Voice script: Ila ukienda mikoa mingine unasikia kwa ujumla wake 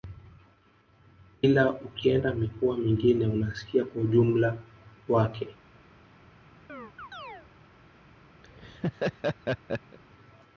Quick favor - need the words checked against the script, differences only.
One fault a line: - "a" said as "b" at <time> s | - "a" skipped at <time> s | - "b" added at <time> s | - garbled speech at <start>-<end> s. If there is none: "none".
none